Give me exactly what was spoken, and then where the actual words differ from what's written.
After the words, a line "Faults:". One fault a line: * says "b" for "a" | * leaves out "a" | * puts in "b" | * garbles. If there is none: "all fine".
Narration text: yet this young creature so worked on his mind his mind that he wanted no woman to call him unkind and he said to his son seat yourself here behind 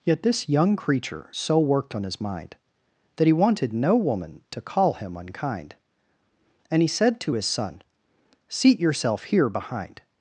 yet this young creature so worked on his mind that he wanted no woman to call him unkind and he said to his son seat yourself here behind
Faults:
* leaves out "his mind"